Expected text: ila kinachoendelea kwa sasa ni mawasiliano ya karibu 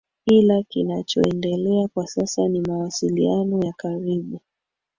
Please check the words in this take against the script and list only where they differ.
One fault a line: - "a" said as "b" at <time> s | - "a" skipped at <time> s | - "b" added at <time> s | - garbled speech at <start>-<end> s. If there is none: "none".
none